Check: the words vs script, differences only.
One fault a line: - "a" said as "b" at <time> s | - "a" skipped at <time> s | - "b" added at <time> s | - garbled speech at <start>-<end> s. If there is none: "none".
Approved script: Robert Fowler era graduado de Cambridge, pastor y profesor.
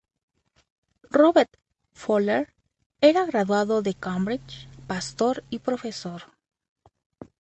none